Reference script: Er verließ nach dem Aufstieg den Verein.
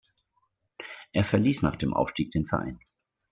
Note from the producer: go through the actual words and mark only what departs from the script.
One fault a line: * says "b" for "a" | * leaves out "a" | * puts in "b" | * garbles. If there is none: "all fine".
all fine